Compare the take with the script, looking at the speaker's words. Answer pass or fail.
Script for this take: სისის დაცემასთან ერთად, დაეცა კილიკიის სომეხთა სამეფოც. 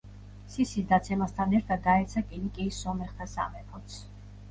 pass